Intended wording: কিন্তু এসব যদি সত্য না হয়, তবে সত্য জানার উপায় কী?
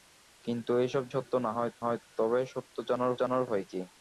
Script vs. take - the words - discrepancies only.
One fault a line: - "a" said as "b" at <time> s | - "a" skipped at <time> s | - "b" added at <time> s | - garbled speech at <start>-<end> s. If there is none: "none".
- "যদি" skipped at 1.0 s
- "হয়" added at 1.8 s
- "জানার" added at 3.2 s